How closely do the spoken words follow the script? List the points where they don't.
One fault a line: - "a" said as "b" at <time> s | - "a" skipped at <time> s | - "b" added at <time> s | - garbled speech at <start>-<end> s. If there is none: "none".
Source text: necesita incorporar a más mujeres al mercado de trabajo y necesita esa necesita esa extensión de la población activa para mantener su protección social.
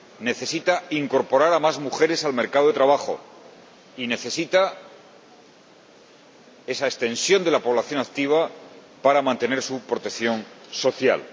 - "necesita esa" skipped at 6.9 s